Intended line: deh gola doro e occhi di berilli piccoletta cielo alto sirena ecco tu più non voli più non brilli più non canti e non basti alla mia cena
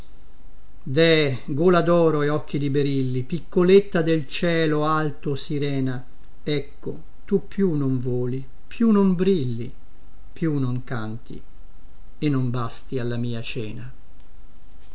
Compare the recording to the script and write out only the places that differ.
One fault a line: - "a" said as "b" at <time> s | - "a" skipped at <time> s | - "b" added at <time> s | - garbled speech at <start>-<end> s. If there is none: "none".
- "del" added at 4.0 s